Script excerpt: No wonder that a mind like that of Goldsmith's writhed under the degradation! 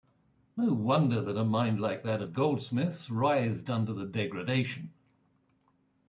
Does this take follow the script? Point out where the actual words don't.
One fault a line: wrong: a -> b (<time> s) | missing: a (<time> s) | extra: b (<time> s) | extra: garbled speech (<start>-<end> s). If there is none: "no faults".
no faults